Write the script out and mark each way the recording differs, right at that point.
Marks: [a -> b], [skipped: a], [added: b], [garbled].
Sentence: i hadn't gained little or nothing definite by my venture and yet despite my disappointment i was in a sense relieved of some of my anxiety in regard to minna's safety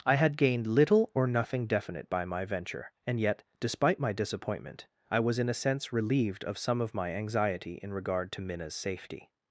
i [hadn't -> had] gained little or nothing definite by my venture and yet despite my disappointment i was in a sense relieved of some of my anxiety in regard to minna's safety